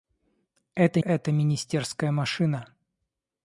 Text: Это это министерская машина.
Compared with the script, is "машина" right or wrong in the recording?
right